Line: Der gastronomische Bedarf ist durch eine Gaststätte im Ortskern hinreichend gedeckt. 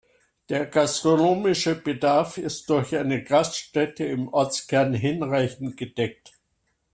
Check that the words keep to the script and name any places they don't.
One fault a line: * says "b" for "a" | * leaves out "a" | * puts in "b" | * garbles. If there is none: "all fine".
all fine